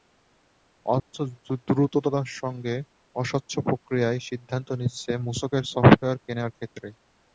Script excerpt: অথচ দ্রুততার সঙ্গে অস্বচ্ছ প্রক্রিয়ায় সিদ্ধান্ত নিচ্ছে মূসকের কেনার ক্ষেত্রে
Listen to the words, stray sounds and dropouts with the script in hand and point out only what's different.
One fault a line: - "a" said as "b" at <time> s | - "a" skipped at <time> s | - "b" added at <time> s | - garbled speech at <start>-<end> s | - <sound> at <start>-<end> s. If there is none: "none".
- dropout at 1.0-1.1 s
- "সফটওয়্যার" added at 5.7 s